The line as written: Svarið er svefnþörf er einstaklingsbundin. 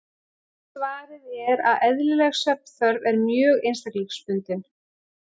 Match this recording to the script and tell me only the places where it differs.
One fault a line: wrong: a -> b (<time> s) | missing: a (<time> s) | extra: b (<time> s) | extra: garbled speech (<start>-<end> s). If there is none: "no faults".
extra: að eðlileg (1.7 s)
extra: mjög (3.2 s)